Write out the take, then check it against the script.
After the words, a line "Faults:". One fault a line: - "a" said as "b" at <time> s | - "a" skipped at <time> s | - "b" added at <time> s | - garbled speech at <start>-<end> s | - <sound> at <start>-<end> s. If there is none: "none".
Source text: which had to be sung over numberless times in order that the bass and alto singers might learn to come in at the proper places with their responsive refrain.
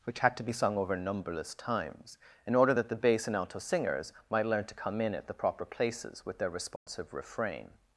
which had to be sung over numberless times in order that the bass and alto singers might learn to come in at the proper places with their responsive refrain.
Faults:
- dropout at 6.8-6.9 s